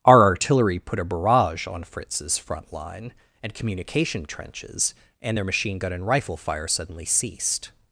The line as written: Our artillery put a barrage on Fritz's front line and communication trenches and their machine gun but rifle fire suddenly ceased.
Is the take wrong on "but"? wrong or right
wrong